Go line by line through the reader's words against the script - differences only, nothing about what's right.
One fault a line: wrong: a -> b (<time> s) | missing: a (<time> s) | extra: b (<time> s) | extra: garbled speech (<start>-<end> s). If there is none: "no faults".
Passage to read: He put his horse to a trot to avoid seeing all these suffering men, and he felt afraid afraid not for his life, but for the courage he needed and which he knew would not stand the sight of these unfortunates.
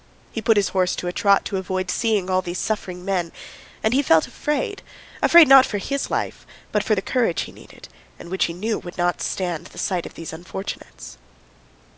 no faults